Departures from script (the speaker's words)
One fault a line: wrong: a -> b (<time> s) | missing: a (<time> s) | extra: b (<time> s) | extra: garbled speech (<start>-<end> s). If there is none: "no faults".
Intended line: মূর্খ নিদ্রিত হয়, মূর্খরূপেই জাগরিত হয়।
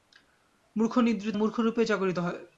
missing: হয় (1.4 s)